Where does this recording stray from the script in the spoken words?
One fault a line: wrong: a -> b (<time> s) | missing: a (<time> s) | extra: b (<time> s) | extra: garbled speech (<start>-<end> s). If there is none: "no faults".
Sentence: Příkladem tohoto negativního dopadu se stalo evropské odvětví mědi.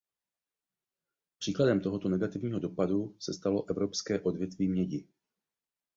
no faults